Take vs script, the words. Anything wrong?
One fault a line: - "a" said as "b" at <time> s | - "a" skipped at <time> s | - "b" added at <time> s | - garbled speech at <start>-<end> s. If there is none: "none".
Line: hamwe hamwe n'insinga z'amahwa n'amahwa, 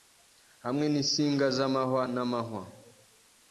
- "hamwe" skipped at 0.8 s